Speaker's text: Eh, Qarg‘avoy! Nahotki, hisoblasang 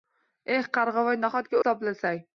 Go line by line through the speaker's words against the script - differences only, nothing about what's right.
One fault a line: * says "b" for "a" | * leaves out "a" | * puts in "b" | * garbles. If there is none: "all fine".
all fine